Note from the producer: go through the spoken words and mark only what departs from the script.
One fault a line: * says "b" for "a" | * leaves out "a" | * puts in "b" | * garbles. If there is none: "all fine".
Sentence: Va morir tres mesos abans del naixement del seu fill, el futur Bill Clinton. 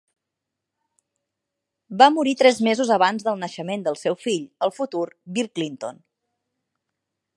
all fine